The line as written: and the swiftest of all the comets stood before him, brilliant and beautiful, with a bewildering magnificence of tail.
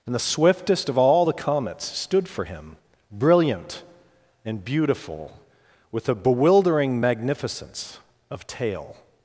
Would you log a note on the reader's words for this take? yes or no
yes